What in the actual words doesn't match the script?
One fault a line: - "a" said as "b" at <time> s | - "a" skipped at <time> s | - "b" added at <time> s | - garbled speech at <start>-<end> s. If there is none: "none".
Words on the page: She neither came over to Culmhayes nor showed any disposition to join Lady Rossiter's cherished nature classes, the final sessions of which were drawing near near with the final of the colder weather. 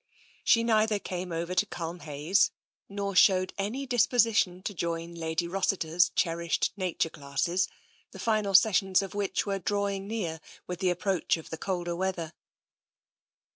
- "near" skipped at 10.4 s
- "final" said as "approach" at 10.9 s